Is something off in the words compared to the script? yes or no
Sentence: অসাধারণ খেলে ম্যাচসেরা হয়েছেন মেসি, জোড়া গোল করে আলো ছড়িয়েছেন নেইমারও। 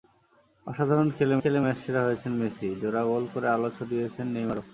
yes